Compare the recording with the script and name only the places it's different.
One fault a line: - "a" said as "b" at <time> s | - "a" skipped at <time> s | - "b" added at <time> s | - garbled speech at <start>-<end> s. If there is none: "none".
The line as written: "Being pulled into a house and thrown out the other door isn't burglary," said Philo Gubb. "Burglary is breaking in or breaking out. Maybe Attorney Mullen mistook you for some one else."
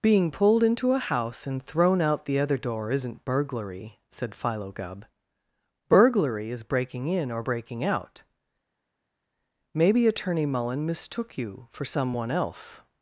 none